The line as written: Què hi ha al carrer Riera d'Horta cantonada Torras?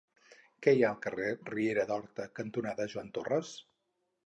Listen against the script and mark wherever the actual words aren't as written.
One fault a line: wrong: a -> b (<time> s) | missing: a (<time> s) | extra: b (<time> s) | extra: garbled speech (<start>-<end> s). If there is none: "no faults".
extra: Joan (3.0 s)